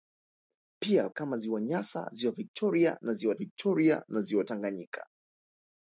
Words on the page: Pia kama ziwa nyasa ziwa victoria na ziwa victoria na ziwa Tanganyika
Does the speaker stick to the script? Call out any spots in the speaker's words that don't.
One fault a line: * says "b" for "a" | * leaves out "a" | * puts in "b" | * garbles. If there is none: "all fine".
all fine